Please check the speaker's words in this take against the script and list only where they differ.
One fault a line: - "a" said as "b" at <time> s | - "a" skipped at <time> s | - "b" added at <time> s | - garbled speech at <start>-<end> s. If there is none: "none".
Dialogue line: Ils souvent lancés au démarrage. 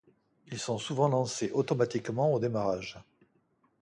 - "sont" added at 0.6 s
- "automatiquement" added at 1.5 s